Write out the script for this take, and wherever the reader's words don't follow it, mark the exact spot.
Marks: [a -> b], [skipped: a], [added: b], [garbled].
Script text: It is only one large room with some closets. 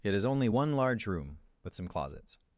It is only one large room with some closets.